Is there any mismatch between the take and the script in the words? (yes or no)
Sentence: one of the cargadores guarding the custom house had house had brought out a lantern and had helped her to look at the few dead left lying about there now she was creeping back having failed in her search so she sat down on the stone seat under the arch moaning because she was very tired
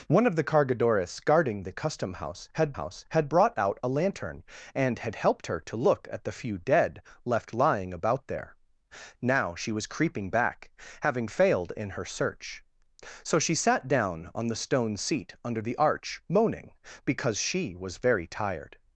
no